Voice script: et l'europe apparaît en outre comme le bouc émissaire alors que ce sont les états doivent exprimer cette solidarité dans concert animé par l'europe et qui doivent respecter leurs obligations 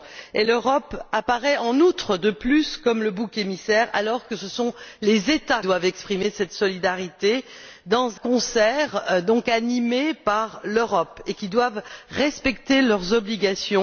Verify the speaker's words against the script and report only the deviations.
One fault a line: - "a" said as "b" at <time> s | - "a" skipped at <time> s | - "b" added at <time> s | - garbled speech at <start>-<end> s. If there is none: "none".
none